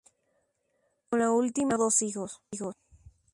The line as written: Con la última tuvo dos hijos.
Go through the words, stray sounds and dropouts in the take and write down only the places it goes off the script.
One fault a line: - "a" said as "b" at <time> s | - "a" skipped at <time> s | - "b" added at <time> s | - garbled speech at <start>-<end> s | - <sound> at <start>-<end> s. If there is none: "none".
- "tuvo" skipped at 1.7 s